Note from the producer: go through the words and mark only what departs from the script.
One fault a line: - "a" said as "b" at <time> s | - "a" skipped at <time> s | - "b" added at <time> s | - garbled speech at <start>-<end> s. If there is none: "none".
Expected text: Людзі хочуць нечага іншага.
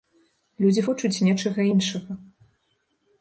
none